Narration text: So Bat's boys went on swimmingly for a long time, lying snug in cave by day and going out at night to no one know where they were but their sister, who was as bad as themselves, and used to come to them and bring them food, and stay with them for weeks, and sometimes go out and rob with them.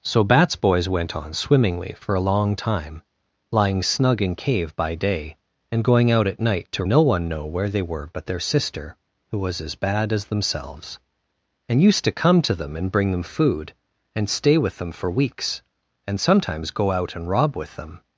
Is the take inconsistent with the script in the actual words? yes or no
no